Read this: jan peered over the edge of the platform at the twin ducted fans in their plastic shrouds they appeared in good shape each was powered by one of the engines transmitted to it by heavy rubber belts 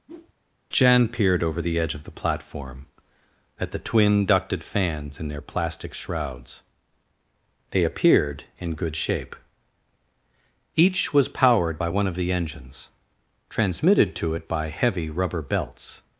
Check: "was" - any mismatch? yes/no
no